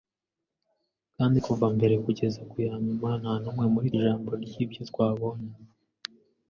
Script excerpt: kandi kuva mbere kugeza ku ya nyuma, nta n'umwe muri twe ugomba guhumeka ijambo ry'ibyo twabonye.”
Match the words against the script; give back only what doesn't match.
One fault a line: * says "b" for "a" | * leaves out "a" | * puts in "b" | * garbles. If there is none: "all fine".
* leaves out "twe ugomba guhumeka"